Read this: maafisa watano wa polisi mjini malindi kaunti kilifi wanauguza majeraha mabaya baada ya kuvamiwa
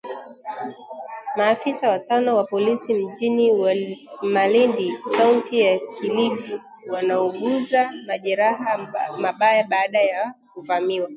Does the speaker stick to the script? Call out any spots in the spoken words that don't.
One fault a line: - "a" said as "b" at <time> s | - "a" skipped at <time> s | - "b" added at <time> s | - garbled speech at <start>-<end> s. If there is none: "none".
- "ya" added at 5.6 s